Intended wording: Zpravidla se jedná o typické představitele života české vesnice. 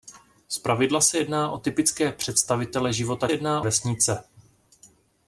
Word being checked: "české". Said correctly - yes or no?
no